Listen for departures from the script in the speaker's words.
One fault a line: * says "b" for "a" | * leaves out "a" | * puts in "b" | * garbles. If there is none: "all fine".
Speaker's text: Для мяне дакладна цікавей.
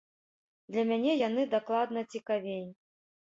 * puts in "яны"